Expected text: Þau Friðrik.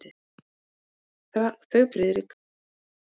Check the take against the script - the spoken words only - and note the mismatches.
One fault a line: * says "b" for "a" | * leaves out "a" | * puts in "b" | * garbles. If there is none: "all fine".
all fine